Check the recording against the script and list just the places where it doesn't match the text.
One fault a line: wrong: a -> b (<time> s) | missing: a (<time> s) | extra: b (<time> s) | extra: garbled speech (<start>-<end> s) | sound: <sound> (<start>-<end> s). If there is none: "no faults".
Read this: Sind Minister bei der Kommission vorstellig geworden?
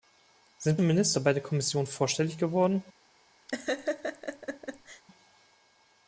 sound: laugh (3.5-5.0 s)